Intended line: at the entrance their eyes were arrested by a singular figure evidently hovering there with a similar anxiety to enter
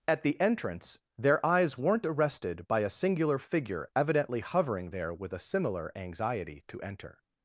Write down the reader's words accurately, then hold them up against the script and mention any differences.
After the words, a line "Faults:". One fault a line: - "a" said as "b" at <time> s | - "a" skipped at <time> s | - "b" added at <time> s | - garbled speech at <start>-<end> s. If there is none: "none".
at the entrance their eyes weren't arrested by a singular figure evidently hovering there with a similar anxiety to enter
Faults:
- "were" said as "weren't" at 1.8 s